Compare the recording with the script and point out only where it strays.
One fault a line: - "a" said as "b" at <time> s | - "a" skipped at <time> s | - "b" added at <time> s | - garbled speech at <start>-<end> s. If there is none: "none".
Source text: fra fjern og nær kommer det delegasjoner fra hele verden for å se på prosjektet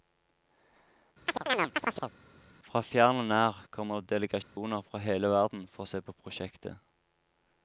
none